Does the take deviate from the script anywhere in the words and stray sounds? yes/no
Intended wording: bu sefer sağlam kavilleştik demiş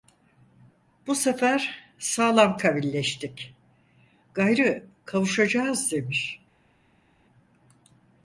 yes